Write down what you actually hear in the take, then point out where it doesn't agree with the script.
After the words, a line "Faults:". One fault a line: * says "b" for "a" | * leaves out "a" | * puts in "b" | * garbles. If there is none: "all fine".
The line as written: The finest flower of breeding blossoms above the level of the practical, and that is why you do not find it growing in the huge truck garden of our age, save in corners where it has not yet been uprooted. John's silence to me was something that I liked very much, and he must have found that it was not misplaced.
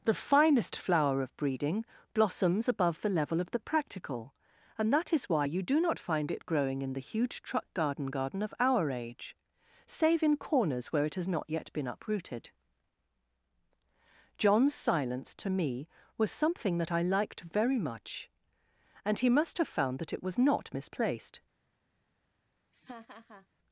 The finest flower of breeding blossoms above the level of the practical, and that is why you do not find it growing in the huge truck garden garden of our age, save in corners where it has not yet been uprooted. John's silence to me was something that I liked very much, and he must have found that it was not misplaced.
Faults:
* puts in "garden"